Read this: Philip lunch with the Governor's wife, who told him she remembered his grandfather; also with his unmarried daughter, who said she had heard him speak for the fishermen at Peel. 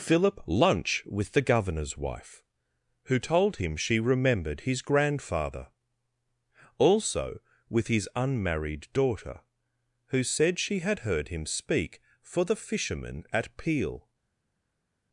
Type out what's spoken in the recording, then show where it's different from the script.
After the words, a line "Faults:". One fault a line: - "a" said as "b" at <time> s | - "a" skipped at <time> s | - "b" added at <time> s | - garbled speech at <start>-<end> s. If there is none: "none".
Philip lunch with the Governor's wife, who told him she remembered his grandfather; also with his unmarried daughter, who said she had heard him speak for the fishermen at Peel.
Faults:
none